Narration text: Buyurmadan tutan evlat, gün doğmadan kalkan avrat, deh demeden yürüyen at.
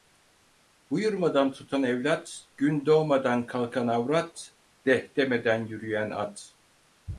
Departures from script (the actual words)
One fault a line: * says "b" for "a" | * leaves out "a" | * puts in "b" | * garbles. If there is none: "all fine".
all fine